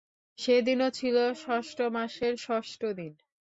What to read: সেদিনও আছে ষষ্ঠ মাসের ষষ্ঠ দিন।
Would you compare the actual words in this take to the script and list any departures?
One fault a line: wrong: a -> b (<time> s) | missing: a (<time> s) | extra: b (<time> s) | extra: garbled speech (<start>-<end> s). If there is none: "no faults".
wrong: আছে -> ছিল (0.9 s)